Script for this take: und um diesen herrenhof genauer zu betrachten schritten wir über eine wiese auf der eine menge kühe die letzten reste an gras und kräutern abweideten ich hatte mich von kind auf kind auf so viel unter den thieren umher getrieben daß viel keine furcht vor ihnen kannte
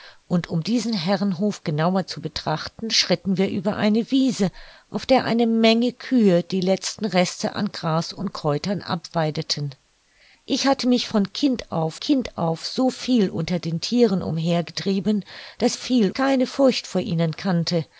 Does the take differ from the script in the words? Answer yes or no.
no